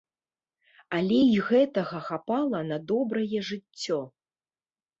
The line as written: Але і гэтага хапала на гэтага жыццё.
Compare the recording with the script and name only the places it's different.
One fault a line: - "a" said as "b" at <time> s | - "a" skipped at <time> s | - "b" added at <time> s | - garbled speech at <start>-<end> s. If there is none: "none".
- "гэтага" said as "добрае" at 2.9 s